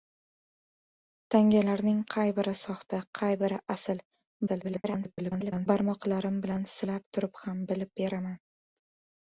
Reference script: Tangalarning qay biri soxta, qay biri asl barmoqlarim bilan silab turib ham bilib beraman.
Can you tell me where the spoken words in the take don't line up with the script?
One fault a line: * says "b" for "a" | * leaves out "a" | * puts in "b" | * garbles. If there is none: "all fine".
* garbles